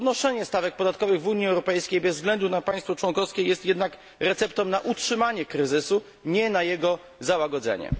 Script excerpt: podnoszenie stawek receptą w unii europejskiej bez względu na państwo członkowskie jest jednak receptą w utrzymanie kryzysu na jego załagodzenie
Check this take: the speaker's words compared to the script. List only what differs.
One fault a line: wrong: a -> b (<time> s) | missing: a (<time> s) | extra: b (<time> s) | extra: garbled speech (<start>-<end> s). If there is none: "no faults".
wrong: receptą -> podatkowych (0.8 s)
wrong: w -> na (4.7 s)
extra: nie (6.2 s)